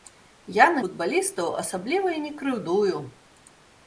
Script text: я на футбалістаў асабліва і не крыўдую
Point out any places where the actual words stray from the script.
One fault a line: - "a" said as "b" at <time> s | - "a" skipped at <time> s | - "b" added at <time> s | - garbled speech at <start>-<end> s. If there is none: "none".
none